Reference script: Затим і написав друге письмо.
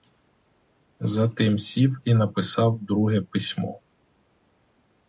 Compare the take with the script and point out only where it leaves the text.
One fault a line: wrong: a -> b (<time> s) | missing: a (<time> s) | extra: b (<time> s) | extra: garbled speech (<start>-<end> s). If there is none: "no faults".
extra: сів (1.6 s)